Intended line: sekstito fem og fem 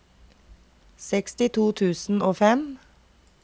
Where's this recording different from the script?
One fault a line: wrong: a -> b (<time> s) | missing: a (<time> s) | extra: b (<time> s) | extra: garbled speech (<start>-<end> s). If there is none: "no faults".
wrong: fem -> tusen (1.7 s)